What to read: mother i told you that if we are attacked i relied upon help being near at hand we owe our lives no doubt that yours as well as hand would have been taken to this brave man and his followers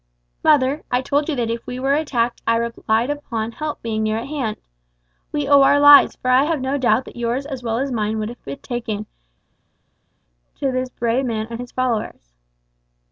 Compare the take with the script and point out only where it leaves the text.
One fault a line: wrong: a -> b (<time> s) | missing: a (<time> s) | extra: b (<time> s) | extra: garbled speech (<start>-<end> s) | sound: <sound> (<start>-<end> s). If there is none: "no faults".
wrong: are -> were (1.8 s)
extra: for i have (6.1 s)
wrong: hand -> mine (7.9 s)